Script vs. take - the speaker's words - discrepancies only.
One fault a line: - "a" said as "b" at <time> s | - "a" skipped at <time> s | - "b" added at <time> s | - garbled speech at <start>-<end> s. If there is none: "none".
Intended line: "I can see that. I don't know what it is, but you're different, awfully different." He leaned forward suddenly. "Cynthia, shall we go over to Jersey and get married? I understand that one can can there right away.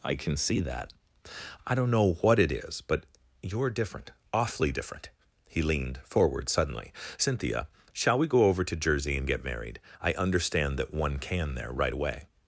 - "can" skipped at 11.6 s